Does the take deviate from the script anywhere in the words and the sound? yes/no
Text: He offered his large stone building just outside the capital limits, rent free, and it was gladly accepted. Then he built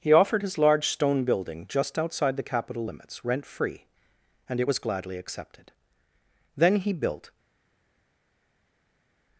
no